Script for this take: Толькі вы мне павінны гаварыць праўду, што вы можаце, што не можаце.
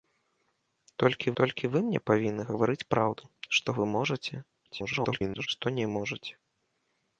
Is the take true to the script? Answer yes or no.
no